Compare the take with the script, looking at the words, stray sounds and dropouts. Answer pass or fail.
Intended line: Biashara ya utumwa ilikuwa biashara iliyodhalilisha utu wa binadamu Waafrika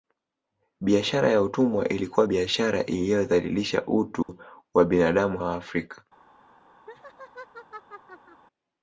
fail